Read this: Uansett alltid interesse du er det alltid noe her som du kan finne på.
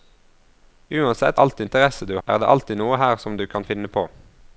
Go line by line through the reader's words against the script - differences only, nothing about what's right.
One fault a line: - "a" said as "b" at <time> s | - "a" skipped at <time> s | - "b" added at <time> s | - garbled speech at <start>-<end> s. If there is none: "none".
none